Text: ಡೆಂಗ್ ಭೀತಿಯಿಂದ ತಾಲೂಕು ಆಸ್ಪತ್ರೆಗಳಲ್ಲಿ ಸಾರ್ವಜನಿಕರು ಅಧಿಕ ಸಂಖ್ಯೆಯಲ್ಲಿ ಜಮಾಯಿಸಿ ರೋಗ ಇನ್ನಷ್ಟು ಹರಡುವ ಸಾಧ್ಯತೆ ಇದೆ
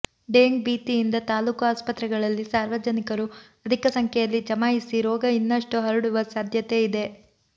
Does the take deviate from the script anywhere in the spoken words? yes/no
no